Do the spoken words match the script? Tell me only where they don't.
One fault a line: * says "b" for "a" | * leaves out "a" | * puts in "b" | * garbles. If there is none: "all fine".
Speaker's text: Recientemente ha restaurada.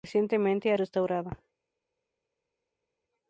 all fine